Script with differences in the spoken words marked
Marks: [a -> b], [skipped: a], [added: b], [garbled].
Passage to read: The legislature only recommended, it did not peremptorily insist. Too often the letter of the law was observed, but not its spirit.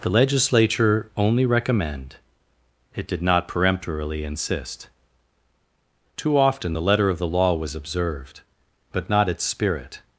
The legislature only [recommended, -> recommend] it did not peremptorily insist. Too often the letter of the law was observed, but not its spirit.